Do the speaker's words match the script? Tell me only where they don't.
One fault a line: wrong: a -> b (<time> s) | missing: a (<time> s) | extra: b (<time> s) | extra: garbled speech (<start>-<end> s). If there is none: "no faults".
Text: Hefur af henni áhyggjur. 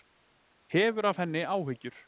no faults